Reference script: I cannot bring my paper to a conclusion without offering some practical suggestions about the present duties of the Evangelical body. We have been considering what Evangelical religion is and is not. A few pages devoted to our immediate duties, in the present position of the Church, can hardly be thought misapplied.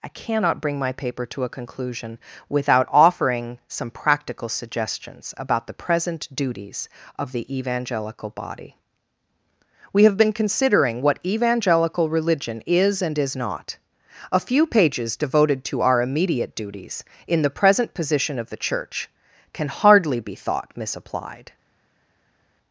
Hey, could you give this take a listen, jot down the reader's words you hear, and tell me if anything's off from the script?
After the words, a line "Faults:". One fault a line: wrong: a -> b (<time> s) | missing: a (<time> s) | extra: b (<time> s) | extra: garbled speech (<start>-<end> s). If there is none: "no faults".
I cannot bring my paper to a conclusion without offering some practical suggestions about the present duties of the Evangelical body. We have been considering what Evangelical religion is and is not. A few pages devoted to our immediate duties, in the present position of the Church, can hardly be thought misapplied.
Faults:
no faults